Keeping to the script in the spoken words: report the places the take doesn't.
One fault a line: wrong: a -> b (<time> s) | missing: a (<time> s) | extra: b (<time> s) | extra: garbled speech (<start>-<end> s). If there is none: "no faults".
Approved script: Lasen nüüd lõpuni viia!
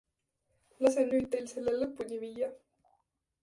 extra: teil selle (1.3 s)